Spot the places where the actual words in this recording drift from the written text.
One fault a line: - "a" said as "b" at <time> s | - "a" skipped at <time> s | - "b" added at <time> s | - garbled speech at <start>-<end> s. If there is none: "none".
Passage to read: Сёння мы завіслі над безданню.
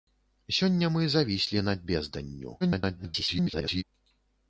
- garbled speech at 2.6-3.8 s